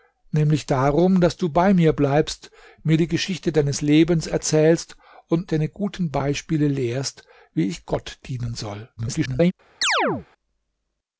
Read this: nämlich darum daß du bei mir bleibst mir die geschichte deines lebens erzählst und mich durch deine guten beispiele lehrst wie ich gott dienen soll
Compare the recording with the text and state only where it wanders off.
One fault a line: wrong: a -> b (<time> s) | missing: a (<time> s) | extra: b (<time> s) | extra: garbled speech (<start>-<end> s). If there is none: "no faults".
missing: mich durch (5.5 s)
extra: garbled speech (9.0-9.5 s)